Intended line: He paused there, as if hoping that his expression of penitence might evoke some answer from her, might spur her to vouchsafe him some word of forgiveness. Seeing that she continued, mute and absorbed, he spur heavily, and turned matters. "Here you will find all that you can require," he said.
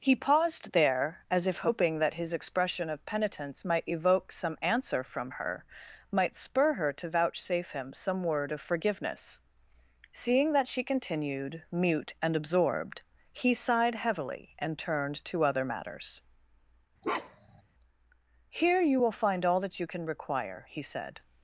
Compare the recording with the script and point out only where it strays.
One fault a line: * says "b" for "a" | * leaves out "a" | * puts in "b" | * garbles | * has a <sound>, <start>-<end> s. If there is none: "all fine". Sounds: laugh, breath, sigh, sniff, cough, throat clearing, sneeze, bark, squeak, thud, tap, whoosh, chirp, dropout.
* says "sighed" for "spur"
* puts in "to other"
* has a bark, 17.0-17.6 s